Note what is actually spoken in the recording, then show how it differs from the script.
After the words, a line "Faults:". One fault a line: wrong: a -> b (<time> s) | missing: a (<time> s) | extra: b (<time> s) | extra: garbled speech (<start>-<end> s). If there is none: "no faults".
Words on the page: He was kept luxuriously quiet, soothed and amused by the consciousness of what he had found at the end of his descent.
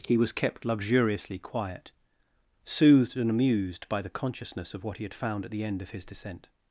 He was kept luxuriously quiet, soothed and amused by the consciousness of what he had found at the end of his descent.
Faults:
no faults